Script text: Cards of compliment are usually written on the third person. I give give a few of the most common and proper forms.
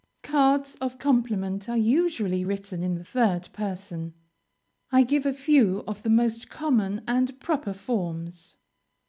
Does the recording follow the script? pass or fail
fail